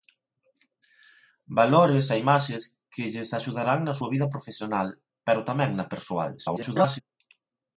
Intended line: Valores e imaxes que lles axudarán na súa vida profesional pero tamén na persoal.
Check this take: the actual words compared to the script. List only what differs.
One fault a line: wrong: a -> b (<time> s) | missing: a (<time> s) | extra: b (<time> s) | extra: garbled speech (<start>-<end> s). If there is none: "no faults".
extra: garbled speech (6.4-7.0 s)